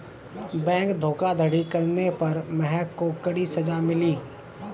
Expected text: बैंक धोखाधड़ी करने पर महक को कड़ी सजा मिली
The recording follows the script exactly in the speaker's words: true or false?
true